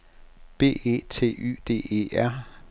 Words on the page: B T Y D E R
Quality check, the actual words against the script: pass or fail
fail